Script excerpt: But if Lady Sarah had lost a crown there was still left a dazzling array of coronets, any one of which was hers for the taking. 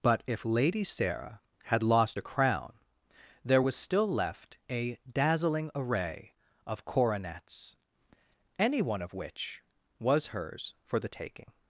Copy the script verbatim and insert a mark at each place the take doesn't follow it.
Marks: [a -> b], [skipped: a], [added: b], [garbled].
But if Lady Sarah had lost a crown there was still left a dazzling array of coronets, any one of which was hers for the taking.